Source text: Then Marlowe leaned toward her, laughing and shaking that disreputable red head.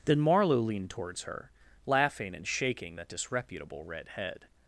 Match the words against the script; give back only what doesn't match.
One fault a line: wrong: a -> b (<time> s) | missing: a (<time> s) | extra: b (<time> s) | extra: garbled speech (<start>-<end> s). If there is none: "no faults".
wrong: toward -> towards (0.9 s)